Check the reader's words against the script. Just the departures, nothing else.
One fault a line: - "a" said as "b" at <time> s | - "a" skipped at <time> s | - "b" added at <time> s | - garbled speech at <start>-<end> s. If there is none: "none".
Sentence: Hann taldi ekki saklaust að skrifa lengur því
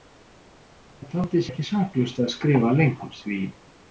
none